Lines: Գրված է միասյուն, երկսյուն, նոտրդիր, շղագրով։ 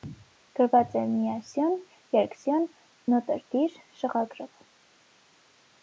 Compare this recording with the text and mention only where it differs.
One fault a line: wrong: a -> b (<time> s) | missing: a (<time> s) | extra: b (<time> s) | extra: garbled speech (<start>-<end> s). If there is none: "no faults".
no faults